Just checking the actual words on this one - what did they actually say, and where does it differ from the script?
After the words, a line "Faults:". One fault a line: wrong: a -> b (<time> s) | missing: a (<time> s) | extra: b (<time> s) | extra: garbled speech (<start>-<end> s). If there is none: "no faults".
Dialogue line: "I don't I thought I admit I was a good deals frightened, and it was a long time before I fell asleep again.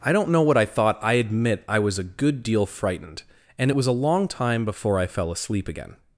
"I don't know what I thought I admit I was a good deal frightened, and it was a long time before I fell asleep again.
Faults:
extra: know what (0.3 s)
wrong: deals -> deal (2.4 s)